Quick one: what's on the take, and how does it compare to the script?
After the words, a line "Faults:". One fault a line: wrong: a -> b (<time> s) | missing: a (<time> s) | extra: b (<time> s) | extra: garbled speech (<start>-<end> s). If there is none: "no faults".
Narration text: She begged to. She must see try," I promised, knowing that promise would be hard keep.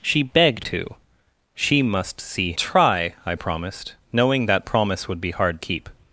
She begged to. She must see try," I promised, knowing that promise would be hard keep.
Faults:
no faults